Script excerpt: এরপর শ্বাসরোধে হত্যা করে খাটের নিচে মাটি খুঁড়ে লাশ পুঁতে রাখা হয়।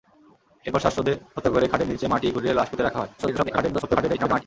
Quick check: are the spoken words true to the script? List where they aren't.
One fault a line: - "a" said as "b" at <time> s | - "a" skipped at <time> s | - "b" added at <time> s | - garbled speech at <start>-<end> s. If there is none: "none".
- garbled speech at 3.2-4.4 s